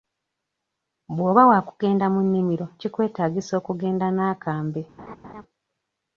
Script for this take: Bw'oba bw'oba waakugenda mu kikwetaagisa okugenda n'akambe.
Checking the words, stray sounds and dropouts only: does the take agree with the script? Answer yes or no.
no